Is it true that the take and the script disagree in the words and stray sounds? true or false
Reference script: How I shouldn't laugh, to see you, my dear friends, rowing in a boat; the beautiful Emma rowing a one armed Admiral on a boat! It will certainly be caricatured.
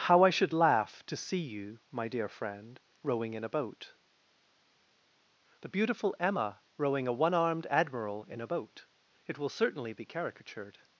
true